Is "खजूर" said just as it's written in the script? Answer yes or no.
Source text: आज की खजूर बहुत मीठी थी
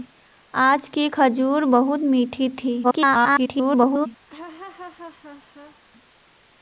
yes